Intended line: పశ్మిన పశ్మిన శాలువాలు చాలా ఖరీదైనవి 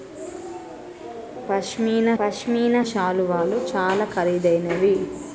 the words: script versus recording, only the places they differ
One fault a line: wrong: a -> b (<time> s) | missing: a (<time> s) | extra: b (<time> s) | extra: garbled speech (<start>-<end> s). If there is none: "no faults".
no faults